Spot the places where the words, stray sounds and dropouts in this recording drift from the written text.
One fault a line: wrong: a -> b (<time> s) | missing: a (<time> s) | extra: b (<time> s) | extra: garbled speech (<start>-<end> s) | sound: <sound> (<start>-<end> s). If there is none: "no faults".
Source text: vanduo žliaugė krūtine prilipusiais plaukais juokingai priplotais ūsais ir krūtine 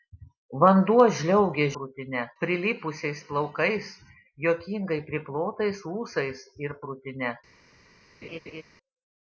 sound: laugh (8.2-8.6 s)